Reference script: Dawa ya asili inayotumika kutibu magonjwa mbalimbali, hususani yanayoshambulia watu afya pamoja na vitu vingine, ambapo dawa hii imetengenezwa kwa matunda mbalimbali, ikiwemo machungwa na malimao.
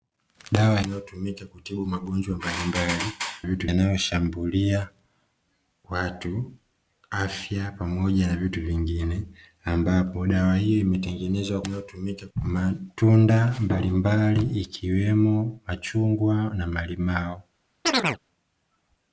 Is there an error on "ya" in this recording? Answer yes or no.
yes